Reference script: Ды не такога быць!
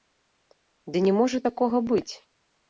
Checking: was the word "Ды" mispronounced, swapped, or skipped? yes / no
no